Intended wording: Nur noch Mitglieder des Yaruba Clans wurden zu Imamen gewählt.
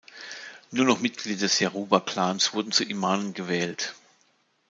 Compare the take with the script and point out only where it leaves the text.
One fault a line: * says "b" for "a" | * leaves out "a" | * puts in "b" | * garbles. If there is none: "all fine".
all fine